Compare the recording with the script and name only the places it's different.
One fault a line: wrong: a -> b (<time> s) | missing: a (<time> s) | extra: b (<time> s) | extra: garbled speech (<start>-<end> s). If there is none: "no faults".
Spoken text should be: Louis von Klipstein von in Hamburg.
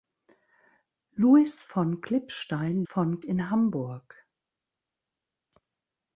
no faults